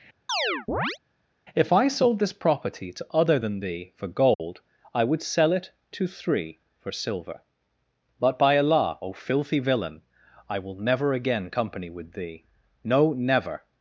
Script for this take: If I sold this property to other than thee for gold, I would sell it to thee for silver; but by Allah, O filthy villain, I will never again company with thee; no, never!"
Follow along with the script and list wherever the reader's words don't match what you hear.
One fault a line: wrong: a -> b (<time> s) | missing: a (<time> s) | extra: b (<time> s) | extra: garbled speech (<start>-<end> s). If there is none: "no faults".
wrong: thee -> three (6.1 s)